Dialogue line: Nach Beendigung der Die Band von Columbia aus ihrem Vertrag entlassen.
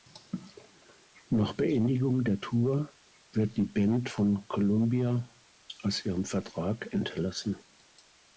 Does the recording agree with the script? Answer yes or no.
no